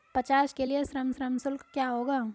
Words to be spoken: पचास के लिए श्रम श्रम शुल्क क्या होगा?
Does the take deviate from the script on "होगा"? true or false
false